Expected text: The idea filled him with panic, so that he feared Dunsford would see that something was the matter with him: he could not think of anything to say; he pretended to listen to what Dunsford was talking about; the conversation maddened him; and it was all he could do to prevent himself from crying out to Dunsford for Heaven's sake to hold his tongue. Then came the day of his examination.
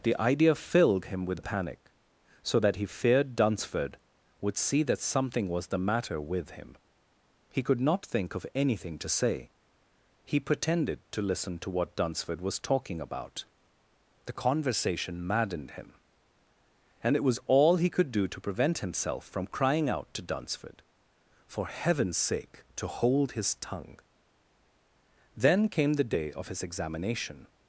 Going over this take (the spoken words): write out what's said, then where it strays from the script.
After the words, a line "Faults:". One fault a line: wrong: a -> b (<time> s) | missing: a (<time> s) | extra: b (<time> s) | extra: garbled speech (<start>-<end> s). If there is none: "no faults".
The idea filled him with panic, so that he feared Dunsford would see that something was the matter with him: he could not think of anything to say; he pretended to listen to what Dunsford was talking about; the conversation maddened him; and it was all he could do to prevent himself from crying out to Dunsford for Heaven's sake to hold his tongue. Then came the day of his examination.
Faults:
no faults